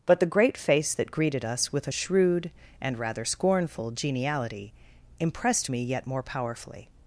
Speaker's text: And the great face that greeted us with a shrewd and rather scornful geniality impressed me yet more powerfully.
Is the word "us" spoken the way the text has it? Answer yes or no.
yes